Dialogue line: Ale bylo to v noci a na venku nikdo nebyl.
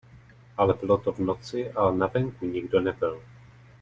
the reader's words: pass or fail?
pass